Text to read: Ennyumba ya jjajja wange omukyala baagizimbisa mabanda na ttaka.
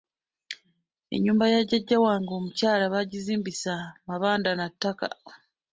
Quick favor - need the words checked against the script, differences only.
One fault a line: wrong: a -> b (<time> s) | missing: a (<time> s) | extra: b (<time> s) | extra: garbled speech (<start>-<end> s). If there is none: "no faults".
no faults